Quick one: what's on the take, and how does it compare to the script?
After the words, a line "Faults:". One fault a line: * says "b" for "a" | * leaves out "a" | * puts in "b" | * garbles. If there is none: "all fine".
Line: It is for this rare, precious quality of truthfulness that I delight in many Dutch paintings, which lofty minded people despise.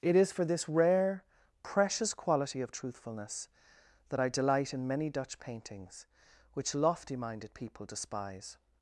It is for this rare, precious quality of truthfulness that I delight in many Dutch paintings, which lofty minded people despise.
Faults:
all fine